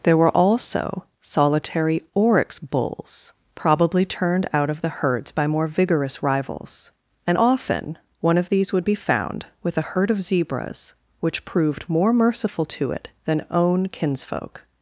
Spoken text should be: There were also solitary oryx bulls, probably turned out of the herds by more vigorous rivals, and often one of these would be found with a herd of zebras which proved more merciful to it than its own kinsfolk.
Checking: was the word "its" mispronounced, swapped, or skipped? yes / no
yes